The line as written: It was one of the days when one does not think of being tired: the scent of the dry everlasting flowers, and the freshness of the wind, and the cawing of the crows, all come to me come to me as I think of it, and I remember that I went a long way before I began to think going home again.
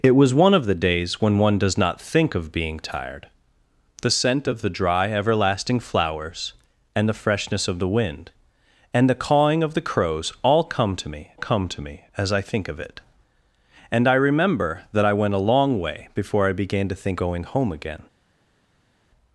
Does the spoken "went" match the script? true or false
true